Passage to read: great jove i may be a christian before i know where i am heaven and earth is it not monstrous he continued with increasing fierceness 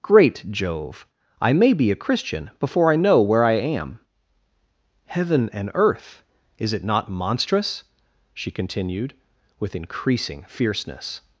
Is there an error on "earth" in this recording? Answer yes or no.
no